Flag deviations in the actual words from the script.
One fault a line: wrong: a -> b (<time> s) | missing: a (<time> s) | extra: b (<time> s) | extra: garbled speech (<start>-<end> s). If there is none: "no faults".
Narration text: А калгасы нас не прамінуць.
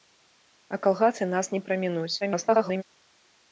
extra: garbled speech (2.2-2.8 s)